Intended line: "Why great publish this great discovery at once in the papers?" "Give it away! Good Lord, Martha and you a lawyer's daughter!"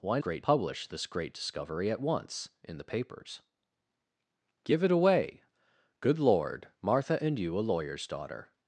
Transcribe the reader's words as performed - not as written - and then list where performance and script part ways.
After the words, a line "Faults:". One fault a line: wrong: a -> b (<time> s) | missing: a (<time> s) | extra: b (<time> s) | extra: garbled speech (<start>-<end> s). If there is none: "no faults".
"Why great publish this great discovery at once in the papers?" "Give it away! Good Lord, Martha and you a lawyer's daughter!"
Faults:
no faults